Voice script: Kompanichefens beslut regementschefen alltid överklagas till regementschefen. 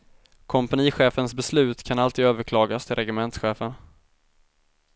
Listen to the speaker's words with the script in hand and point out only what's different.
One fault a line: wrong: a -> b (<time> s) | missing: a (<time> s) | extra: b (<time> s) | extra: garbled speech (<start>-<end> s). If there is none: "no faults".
wrong: regementschefen -> kan (1.8 s)